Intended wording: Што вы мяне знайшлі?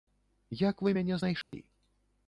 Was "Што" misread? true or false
true